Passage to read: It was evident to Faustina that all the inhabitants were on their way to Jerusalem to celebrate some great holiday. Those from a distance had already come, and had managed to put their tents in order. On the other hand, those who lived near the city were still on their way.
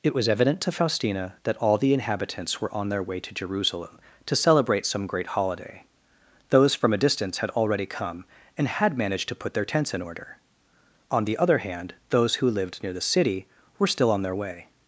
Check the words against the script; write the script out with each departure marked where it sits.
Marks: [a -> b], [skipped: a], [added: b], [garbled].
It was evident to Faustina that all the inhabitants were on their way to Jerusalem to celebrate some great holiday. Those from a distance had already come, and had managed to put their tents in order. On the other hand, those who lived near the city were still on their way.